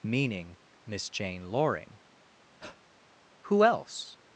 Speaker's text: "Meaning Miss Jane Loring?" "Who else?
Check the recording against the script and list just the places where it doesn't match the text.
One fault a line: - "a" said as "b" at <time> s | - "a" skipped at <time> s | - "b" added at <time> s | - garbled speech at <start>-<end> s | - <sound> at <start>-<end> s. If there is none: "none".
- breath at 2.6-2.8 s